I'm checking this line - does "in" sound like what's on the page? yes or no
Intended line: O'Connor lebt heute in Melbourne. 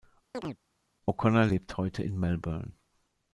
yes